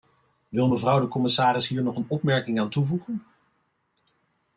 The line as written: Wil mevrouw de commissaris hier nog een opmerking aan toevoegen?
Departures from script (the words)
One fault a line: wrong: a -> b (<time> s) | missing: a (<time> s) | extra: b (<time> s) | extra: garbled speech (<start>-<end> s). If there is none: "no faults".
no faults